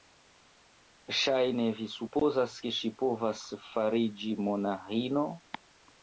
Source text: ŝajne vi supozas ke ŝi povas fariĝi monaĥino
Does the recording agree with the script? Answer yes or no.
yes